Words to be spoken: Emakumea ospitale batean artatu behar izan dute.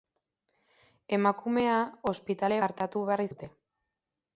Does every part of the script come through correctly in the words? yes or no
no